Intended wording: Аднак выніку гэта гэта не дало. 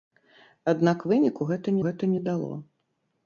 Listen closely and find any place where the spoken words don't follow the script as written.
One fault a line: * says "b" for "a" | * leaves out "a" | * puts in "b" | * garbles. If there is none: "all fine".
all fine